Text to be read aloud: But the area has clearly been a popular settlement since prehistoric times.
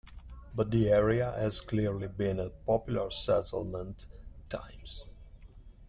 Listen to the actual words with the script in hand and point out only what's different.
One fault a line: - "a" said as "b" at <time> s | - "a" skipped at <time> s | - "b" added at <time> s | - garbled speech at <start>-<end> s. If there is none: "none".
- "since prehistoric" skipped at 4.1 s